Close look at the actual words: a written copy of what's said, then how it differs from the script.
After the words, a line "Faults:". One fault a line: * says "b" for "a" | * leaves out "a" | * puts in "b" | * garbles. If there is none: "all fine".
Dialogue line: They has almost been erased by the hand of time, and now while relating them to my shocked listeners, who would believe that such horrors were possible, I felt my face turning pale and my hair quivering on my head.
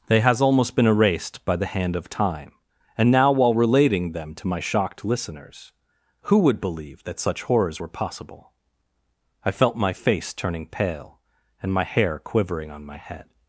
They has almost been erased by the hand of time, and now while relating them to my shocked listeners, who would believe that such horrors were possible, I felt my face turning pale and my hair quivering on my head.
Faults:
all fine